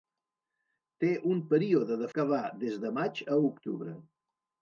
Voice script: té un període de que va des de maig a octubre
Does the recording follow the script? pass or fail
pass